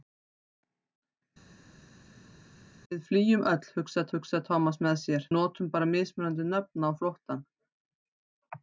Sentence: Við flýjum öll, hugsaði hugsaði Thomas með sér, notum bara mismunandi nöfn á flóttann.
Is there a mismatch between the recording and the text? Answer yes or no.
no